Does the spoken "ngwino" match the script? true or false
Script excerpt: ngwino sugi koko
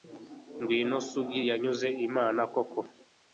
true